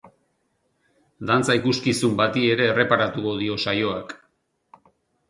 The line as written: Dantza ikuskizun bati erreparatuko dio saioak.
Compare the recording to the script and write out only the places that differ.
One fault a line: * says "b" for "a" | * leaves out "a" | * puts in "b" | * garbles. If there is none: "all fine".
* puts in "ere"